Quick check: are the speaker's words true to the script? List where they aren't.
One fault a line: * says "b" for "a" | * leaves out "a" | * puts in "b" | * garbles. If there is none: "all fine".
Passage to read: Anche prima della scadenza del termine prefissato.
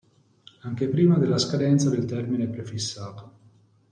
all fine